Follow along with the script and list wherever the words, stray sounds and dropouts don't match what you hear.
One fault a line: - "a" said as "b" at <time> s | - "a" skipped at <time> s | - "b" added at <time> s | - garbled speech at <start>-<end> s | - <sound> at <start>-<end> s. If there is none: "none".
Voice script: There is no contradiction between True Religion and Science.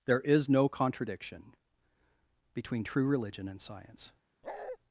- bark at 4.4-4.8 s